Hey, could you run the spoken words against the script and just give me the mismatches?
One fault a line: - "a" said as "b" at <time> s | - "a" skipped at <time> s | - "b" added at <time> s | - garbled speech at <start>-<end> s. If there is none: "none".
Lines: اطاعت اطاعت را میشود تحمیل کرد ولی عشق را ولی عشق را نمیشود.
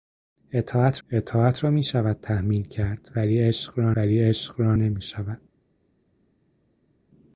none